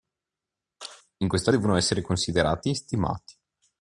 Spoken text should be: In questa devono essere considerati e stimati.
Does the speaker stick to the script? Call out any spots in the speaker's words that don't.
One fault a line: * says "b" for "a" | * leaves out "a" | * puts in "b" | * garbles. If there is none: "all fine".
all fine